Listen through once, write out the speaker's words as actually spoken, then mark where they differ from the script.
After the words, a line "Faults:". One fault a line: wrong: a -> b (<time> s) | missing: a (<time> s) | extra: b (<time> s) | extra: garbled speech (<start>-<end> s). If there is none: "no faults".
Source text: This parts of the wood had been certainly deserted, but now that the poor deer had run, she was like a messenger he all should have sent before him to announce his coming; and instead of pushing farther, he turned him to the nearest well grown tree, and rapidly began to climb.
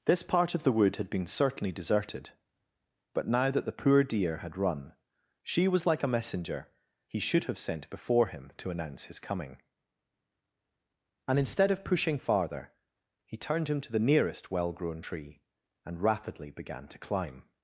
This part of the wood had been certainly deserted, but now that the poor deer had run, she was like a messenger he should have sent before him to announce his coming; and instead of pushing farther, he turned him to the nearest well grown tree, and rapidly began to climb.
Faults:
wrong: parts -> part (0.2 s)
missing: all (7.2 s)